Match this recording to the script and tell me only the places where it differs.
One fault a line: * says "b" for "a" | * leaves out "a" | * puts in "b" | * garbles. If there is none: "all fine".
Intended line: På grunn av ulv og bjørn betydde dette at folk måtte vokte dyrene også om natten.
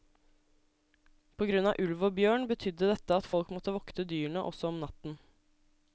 all fine